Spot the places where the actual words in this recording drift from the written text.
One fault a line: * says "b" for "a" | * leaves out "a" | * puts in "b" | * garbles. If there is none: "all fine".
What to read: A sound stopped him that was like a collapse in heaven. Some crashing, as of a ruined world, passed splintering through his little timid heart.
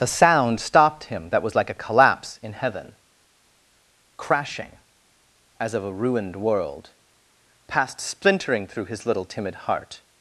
* leaves out "Some"